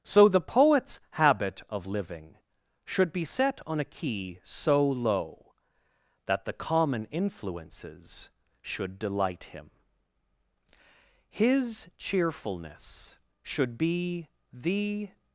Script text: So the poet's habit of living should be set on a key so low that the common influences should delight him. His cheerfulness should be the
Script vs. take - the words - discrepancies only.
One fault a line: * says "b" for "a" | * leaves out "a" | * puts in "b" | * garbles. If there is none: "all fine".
all fine